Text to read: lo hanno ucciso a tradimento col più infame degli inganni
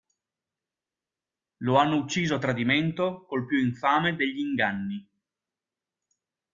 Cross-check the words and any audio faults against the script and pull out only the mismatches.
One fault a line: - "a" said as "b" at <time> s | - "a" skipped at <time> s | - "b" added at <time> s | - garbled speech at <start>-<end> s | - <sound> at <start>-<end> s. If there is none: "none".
none